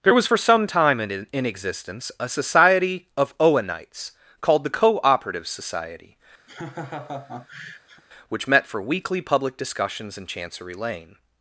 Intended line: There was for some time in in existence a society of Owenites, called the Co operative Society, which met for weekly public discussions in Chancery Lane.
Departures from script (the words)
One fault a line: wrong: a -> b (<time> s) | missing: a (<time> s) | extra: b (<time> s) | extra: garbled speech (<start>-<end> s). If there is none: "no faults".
no faults